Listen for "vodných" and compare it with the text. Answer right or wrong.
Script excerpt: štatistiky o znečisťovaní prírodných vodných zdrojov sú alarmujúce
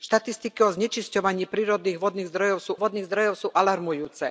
right